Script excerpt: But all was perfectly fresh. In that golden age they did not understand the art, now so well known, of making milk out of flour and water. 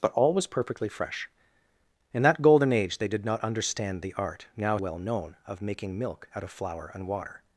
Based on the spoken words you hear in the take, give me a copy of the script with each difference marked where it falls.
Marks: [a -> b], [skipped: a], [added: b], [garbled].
But all was perfectly fresh. In that golden age they did not understand the art, now [skipped: so] well known, of making milk out of flour and water.